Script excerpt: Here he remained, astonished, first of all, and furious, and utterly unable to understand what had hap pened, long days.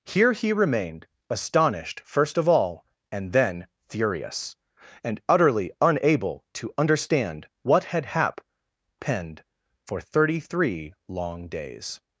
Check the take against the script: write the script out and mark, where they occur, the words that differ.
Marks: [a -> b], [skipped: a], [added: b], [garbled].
Here he remained, astonished, first of all, and [added: then] furious, and utterly unable to understand what had hap pened, [added: for thirty three] long days.